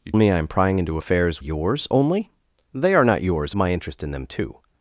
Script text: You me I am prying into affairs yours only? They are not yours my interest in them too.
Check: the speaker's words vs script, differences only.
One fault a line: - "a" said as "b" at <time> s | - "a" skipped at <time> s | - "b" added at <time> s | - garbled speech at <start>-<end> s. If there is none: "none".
none